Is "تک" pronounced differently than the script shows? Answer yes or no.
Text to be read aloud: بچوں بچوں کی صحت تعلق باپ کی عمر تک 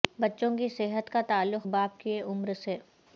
yes